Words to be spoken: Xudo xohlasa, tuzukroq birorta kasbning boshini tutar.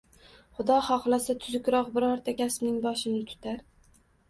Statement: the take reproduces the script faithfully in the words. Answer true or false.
true